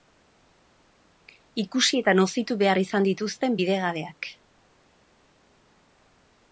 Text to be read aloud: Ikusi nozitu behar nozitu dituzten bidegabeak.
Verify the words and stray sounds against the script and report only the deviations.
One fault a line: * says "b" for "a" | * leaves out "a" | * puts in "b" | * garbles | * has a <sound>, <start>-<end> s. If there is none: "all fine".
* puts in "eta"
* says "izan" for "nozitu"